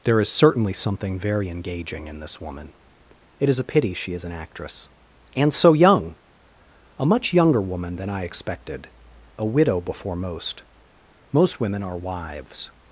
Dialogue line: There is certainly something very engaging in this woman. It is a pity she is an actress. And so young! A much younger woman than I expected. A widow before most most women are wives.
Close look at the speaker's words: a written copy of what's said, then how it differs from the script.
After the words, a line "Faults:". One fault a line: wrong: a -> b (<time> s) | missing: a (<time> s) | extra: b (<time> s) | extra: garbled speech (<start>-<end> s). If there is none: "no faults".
There is certainly something very engaging in this woman. It is a pity she is an actress. And so young! A much younger woman than I expected. A widow before most most women are wives.
Faults:
no faults